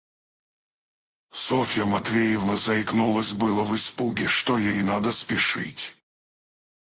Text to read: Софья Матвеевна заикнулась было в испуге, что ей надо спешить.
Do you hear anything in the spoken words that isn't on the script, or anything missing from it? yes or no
no